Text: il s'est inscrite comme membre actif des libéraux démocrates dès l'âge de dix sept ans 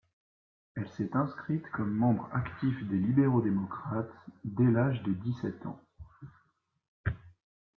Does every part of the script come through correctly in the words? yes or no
no